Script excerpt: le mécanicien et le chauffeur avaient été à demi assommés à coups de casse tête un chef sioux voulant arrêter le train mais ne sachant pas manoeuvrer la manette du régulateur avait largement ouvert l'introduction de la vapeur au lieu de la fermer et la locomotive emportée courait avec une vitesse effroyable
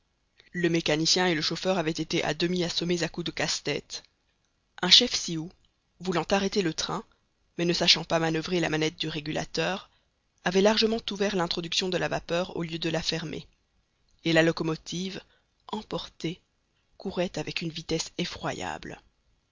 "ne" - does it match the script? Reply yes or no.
yes